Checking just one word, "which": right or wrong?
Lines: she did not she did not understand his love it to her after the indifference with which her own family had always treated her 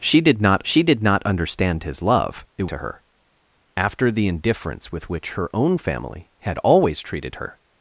right